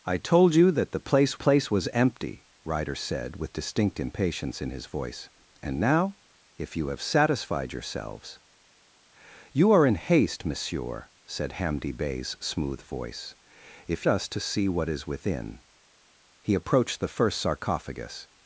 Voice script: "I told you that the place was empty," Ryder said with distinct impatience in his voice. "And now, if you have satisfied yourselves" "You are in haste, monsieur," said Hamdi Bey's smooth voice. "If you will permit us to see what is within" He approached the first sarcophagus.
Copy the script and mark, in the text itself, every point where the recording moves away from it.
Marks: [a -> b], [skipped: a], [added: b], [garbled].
"I told you that the place [added: place] was empty," Ryder said with distinct impatience in his voice. "And now, if you have satisfied yourselves" "You are in haste, monsieur," said Hamdi Bey's smooth voice. "If [skipped: you will permit] us to see what is within" He approached the first sarcophagus.